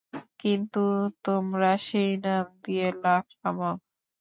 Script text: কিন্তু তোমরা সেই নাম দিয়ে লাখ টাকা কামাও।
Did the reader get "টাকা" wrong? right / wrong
wrong